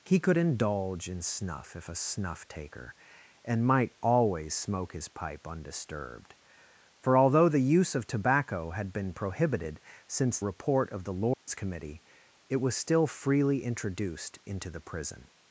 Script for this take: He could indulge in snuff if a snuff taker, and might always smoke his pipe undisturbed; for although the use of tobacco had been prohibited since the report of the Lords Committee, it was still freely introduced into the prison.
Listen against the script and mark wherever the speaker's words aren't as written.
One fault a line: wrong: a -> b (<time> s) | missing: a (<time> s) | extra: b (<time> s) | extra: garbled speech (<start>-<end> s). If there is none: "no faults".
missing: the (10.4 s)